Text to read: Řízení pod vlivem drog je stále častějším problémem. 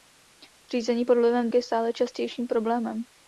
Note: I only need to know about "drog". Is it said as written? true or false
false